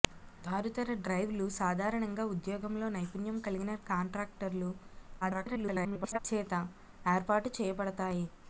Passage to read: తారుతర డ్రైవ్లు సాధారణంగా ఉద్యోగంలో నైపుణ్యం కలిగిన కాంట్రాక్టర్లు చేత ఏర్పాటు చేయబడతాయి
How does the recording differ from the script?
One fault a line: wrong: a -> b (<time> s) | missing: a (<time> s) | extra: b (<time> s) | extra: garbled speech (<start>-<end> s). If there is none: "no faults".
extra: garbled speech (5.2-6.2 s)